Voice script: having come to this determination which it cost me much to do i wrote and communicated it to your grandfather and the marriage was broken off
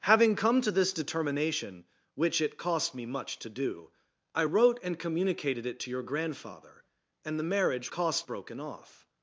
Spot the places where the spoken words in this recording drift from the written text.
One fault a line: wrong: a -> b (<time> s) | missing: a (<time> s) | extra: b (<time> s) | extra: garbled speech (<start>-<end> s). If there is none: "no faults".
wrong: was -> cost (7.9 s)